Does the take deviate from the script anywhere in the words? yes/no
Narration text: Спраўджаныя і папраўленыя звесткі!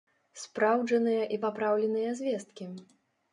no